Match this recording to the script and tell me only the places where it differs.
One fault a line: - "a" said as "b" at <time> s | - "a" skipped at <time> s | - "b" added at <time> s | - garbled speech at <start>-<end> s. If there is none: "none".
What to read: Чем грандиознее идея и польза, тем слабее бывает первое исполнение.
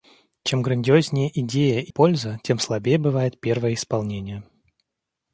none